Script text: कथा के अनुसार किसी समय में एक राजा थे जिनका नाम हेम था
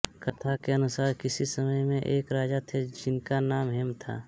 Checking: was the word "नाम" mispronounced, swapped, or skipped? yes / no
no